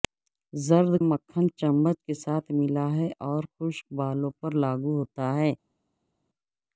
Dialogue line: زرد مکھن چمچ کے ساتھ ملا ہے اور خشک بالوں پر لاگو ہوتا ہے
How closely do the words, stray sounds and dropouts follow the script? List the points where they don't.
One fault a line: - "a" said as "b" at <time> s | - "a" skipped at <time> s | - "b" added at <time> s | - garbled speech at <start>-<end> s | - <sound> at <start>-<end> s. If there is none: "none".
none